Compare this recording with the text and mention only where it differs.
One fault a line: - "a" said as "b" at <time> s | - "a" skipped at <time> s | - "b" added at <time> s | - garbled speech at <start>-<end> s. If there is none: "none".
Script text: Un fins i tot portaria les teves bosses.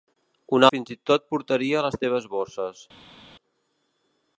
none